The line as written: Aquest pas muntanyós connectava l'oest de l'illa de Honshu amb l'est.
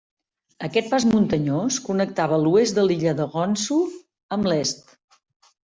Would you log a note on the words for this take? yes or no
no